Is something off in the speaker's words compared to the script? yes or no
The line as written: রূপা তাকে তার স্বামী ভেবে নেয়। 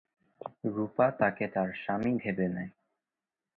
no